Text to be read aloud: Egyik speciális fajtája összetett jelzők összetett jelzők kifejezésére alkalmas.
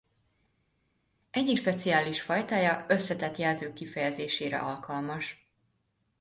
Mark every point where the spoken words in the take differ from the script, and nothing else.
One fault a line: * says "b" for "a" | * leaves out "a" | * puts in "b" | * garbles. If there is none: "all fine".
* leaves out "összetett jelzők"